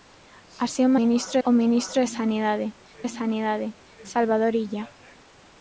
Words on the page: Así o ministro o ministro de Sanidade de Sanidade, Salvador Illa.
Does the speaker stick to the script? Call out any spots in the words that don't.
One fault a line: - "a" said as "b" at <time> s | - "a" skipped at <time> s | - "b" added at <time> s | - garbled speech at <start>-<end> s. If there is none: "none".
none